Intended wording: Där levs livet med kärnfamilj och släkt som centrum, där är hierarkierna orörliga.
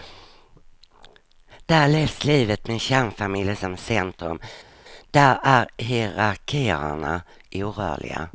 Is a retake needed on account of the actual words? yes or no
yes